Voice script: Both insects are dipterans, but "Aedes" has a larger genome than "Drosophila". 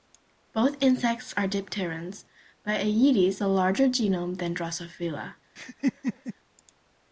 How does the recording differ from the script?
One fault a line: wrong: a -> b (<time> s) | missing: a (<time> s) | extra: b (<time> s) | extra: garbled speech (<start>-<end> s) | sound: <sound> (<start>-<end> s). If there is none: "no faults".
missing: has (3.4 s)
sound: laugh (5.6-6.3 s)